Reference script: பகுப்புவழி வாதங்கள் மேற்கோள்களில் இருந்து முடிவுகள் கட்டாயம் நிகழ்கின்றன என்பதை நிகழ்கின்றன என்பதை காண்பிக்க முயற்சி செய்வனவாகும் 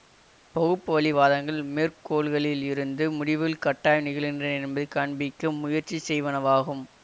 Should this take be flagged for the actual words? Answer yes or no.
yes